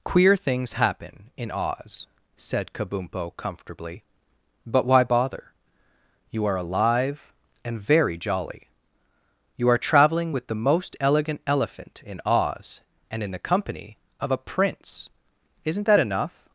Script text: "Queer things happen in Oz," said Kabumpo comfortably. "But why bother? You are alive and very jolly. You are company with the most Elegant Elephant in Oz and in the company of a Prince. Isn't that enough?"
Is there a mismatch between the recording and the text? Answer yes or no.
yes